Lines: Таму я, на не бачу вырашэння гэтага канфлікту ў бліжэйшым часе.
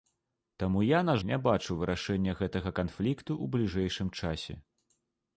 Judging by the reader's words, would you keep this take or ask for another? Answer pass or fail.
pass